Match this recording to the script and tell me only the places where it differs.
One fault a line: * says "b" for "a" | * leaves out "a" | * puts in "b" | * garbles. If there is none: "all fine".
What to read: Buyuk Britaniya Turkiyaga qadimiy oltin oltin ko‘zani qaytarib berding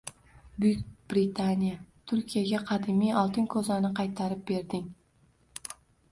* leaves out "oltin"